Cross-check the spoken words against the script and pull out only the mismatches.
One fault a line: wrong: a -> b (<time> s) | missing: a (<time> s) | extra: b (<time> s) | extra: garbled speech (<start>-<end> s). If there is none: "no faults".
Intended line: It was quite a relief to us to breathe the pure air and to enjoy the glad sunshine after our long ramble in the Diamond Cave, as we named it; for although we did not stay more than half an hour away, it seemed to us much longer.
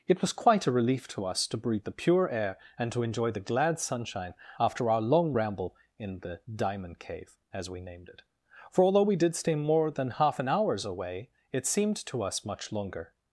missing: not (9.4 s)
wrong: hour -> hours (10.5 s)